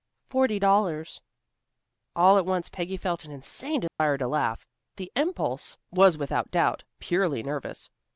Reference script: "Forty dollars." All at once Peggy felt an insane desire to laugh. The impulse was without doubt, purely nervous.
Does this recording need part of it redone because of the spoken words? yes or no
no